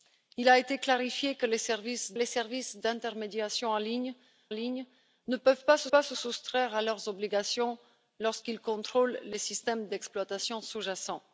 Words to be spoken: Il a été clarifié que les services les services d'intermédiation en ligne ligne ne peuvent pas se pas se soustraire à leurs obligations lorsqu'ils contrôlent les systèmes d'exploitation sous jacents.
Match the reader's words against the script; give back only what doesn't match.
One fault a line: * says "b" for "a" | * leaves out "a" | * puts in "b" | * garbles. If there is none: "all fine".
all fine